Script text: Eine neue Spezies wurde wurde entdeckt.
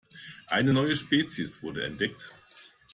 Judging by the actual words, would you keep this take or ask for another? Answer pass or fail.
fail